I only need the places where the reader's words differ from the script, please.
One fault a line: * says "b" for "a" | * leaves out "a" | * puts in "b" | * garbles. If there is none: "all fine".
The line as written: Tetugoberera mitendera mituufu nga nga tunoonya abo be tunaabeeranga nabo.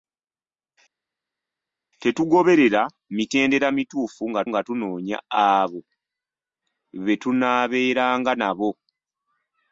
all fine